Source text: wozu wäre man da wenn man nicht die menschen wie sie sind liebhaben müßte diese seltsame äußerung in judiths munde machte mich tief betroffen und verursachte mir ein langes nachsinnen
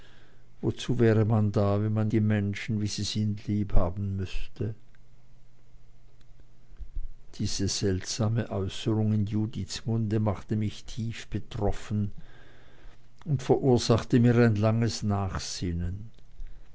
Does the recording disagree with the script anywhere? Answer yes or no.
yes